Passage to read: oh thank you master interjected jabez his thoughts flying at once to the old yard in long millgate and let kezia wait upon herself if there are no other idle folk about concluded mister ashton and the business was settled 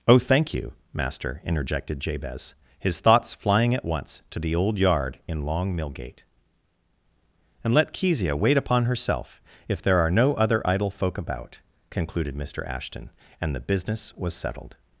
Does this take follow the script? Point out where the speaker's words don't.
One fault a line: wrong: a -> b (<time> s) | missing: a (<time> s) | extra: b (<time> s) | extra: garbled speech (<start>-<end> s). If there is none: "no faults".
no faults